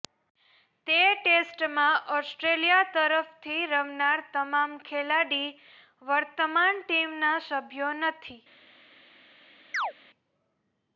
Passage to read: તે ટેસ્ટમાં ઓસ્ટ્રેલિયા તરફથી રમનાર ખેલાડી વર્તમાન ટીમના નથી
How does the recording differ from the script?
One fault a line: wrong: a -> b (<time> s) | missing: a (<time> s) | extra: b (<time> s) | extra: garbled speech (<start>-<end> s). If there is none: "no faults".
extra: તમામ (4.3 s)
extra: સભ્યો (7.5 s)